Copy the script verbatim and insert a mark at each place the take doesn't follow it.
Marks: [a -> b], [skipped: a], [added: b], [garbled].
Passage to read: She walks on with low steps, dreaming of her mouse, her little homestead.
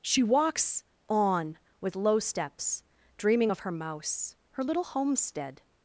She walks on with low steps, dreaming of her mouse, her little homestead.